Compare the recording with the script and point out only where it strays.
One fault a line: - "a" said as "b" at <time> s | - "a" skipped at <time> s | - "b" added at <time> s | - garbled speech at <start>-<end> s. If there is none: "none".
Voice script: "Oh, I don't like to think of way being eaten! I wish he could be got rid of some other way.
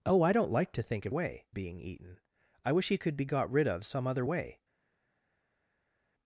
none